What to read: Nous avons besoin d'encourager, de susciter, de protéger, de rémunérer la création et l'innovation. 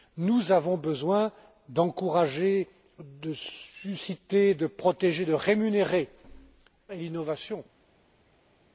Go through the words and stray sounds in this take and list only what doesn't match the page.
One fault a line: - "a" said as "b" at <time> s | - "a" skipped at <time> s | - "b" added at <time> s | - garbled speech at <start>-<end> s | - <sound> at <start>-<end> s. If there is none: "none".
- "la création" skipped at 6.1 s